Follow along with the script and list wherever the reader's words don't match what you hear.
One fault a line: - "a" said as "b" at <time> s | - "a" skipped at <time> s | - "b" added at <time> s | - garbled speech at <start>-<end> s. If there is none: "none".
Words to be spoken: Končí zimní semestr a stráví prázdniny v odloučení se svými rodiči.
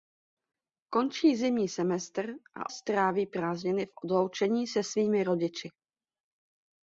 none